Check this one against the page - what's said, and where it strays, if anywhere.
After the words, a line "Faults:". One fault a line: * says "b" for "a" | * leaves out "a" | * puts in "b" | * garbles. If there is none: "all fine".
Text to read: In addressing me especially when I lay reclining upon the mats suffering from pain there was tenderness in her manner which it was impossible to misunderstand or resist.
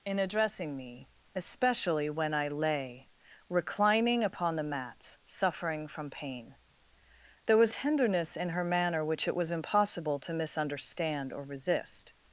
In addressing me especially when I lay reclining upon the mats suffering from pain there was tenderness in her manner which it was impossible to misunderstand or resist.
Faults:
all fine